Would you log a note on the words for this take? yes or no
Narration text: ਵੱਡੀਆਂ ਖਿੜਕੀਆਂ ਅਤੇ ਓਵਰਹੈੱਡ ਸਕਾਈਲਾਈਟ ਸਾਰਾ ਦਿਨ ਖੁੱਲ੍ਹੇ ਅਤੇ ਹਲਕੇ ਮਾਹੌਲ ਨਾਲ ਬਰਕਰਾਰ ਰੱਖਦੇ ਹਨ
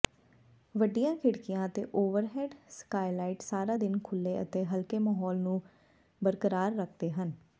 yes